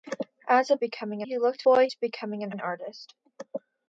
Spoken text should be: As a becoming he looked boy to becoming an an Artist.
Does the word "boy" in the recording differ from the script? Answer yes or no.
no